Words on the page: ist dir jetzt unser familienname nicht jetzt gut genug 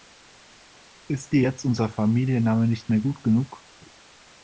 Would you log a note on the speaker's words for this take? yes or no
yes